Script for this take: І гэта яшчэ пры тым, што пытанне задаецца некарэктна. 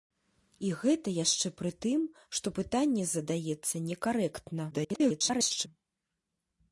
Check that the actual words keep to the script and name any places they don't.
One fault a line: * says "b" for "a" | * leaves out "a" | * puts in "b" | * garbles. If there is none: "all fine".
* garbles